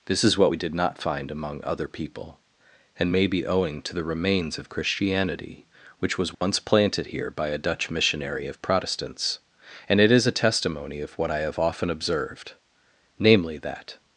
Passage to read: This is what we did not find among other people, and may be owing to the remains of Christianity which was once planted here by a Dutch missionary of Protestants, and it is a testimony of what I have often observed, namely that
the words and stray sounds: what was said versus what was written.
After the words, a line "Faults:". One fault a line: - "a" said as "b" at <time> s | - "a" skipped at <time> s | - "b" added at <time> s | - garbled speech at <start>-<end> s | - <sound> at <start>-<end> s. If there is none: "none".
This is what we did not find among other people, and may be owing to the remains of Christianity which was once planted here by a Dutch missionary of Protestants, and it is a testimony of what I have often observed, namely that
Faults:
- dropout at 6.3-6.4 s